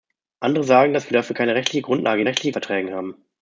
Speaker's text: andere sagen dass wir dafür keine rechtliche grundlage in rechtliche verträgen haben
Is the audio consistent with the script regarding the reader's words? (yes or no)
yes